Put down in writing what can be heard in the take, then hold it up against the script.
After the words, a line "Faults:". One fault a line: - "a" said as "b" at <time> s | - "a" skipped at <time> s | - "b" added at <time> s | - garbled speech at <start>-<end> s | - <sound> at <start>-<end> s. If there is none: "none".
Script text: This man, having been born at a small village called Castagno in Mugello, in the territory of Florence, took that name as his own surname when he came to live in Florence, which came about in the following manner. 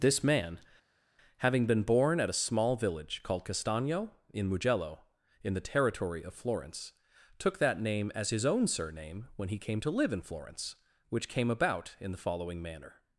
This man, having been born at a small village called Castagno in Mugello, in the territory of Florence, took that name as his own surname when he came to live in Florence, which came about in the following manner.
Faults:
none